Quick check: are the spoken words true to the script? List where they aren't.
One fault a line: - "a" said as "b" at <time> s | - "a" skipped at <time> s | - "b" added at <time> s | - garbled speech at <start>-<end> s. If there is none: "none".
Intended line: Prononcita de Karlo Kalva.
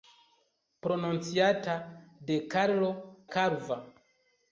none